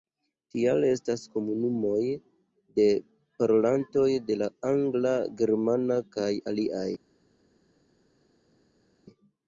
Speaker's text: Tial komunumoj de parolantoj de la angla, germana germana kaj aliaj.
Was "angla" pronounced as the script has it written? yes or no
yes